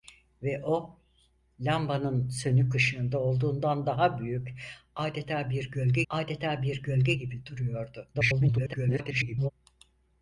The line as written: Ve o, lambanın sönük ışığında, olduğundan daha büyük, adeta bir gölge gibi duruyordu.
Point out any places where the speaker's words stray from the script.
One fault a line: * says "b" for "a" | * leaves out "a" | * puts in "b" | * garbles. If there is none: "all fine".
* puts in "adeta bir gölge"
* garbles